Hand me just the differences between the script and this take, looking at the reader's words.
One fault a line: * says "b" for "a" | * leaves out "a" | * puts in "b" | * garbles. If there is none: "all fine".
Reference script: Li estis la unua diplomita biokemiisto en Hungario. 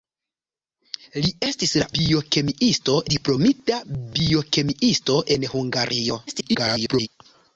* says "biokemiisto" for "unua"
* garbles